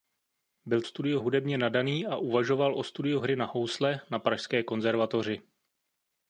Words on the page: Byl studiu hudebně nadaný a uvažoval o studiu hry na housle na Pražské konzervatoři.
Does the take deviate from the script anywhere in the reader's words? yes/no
no